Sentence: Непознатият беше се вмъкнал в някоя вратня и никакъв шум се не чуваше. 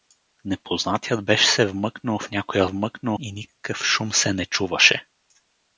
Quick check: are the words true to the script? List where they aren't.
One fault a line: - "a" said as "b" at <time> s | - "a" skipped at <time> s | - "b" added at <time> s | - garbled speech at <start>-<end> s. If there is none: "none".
- "вратня" said as "вмъкнал" at 2.6 s